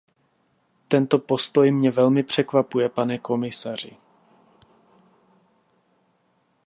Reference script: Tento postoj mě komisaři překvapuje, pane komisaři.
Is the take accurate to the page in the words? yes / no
no